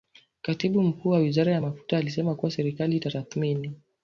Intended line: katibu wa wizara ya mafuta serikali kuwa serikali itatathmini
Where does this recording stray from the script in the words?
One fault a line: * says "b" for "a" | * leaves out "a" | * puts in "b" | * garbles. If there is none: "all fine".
* puts in "mkuu"
* says "alisema" for "serikali"